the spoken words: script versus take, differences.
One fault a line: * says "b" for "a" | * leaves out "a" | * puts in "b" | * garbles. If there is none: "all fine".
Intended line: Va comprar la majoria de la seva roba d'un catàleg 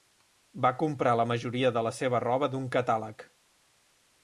all fine